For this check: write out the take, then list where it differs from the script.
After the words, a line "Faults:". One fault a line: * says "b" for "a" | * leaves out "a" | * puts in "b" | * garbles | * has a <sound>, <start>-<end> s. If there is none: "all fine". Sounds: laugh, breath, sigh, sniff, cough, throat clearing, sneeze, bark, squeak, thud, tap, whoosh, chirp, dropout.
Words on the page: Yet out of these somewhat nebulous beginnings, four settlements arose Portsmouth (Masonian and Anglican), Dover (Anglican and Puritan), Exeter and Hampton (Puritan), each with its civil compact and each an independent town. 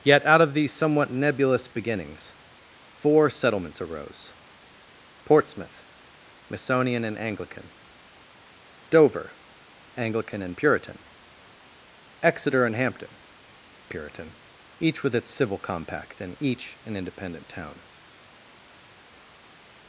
Yet out of these somewhat nebulous beginnings, four settlements arose Portsmouth (Masonian and Anglican), Dover (Anglican and Puritan), Exeter and Hampton (Puritan), each with its civil compact and each an independent town.
Faults:
all fine